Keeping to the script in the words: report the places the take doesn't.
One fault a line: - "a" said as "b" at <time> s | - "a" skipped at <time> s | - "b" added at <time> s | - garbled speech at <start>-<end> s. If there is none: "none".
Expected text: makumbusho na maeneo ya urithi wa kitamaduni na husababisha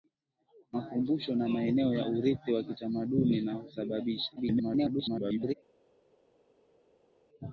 - garbled speech at 4.4-5.5 s